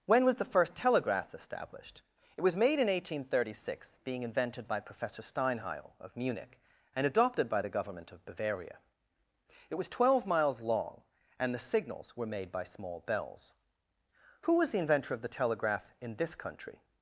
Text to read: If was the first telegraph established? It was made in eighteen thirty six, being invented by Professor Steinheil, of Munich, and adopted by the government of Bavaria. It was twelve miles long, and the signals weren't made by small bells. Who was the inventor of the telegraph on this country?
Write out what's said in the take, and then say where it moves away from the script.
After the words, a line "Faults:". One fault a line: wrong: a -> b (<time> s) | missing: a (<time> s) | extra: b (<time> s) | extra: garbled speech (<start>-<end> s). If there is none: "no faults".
When was the first telegraph established? It was made in eighteen thirty six, being invented by Professor Steinheil, of Munich, and adopted by the government of Bavaria. It was twelve miles long, and the signals were made by small bells. Who was the inventor of the telegraph in this country?
Faults:
wrong: If -> When (0.1 s)
wrong: weren't -> were (12.2 s)
wrong: on -> in (16.0 s)